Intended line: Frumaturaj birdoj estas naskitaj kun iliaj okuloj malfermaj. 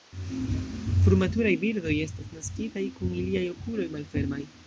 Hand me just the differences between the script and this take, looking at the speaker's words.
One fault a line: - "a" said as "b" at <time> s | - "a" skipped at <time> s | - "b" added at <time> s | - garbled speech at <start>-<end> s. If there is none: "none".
none